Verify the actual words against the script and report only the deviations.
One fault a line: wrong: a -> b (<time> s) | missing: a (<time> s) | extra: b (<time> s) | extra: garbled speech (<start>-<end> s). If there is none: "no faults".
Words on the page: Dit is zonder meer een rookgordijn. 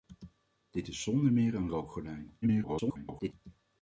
extra: garbled speech (2.4-3.3 s)